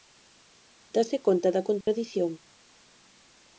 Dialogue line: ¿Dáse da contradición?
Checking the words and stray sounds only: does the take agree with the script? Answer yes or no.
no